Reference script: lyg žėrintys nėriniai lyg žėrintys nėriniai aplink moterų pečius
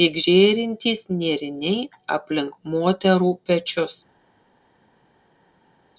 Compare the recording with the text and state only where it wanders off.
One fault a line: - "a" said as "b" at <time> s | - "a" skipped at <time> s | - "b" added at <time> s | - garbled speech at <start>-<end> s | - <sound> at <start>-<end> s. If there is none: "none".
- "lyg žėrintys nėriniai" skipped at 1.8 s